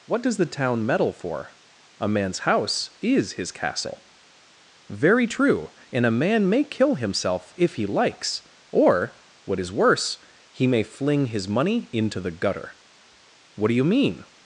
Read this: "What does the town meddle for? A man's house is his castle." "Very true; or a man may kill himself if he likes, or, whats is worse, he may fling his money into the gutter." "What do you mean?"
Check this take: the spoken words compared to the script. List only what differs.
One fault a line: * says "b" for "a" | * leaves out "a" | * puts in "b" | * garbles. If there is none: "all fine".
* says "and" for "or"
* says "what" for "whats"